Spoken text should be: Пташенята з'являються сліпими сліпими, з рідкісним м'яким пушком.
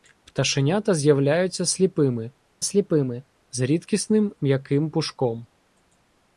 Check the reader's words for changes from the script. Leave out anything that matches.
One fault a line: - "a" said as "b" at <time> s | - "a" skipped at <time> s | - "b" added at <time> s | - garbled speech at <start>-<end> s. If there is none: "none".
none